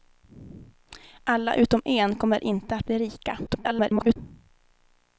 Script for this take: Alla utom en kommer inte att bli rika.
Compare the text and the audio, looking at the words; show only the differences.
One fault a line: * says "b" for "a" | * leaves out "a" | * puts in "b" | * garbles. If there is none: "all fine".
* garbles